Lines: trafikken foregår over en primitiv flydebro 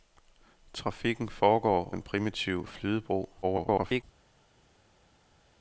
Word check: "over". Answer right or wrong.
wrong